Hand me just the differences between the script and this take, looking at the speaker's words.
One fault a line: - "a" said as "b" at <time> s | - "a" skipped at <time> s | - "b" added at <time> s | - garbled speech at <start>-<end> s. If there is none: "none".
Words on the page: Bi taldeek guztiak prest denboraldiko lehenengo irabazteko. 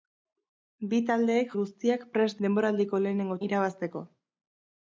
none